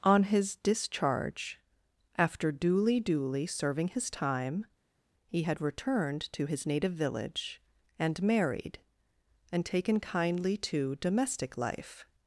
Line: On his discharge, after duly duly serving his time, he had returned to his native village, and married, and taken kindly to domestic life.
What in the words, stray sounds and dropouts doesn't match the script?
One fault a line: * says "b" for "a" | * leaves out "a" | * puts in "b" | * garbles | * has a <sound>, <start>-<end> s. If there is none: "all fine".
all fine